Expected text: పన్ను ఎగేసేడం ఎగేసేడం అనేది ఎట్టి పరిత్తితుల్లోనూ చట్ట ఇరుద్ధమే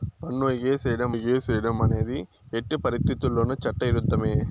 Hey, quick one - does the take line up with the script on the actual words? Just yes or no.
yes